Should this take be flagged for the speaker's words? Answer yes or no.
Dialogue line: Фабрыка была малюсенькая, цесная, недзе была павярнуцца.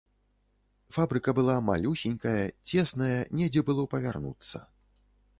yes